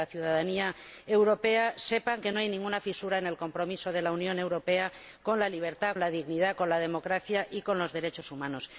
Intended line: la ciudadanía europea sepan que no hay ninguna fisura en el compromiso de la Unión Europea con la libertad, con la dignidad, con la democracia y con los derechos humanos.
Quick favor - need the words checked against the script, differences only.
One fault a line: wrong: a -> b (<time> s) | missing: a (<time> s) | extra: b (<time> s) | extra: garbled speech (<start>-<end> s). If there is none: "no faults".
missing: con (6.0 s)